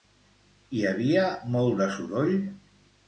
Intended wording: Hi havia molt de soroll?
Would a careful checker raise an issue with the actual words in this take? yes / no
no